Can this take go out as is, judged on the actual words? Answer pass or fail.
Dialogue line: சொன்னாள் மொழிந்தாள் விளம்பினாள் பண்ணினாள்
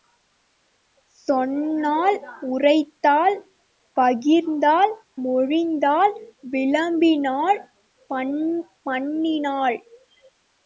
fail